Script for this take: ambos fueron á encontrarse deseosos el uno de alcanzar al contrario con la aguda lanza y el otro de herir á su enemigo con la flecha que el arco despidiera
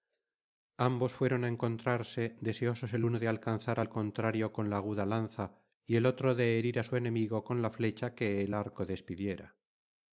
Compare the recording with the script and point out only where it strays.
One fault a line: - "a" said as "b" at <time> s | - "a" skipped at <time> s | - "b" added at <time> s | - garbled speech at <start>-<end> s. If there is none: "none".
none